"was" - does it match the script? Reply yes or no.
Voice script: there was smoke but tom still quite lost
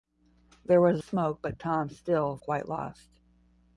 yes